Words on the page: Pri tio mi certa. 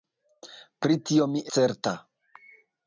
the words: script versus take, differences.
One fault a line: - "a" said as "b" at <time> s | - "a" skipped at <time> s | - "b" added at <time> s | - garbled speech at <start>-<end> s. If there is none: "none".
none